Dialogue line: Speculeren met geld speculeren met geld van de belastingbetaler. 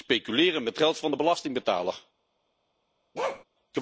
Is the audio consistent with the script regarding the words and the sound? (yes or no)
no